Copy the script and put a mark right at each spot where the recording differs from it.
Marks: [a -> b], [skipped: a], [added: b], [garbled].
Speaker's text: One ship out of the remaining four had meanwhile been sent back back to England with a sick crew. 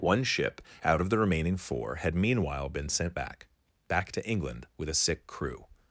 One ship out of the remaining four had meanwhile been sent back back to England with a sick crew.